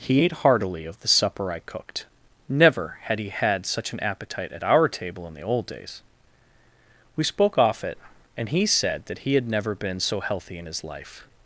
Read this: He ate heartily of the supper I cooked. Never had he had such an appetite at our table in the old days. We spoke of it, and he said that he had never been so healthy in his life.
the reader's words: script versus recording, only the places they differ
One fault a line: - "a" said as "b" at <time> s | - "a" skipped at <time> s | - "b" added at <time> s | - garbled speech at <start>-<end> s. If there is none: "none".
- "of" said as "off" at 7.6 s